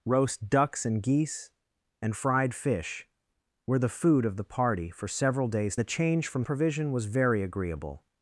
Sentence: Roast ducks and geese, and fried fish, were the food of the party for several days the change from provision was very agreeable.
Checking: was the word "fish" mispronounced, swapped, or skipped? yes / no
no